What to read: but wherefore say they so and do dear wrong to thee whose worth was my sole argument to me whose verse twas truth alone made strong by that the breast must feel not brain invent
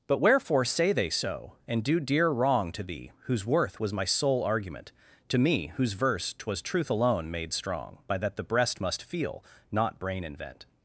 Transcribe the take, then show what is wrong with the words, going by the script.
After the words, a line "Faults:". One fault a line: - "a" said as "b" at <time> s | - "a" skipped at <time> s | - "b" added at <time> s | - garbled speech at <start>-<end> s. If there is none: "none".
but wherefore say they so and do dear wrong to thee whose worth was my sole argument to me whose verse twas truth alone made strong by that the breast must feel not brain invent
Faults:
none